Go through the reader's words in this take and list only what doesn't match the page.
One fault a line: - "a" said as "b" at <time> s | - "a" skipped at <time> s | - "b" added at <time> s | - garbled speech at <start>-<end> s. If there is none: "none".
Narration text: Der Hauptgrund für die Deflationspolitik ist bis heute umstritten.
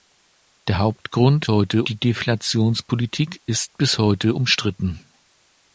- "für" said as "heute" at 1.5 s